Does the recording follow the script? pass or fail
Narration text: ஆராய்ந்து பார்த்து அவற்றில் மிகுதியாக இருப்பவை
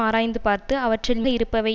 fail